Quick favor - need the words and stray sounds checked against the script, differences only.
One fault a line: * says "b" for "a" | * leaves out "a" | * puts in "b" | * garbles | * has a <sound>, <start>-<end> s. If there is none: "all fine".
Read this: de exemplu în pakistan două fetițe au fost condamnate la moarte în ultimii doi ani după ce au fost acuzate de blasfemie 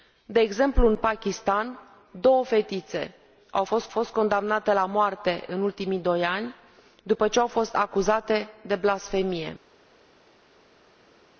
* puts in "fost"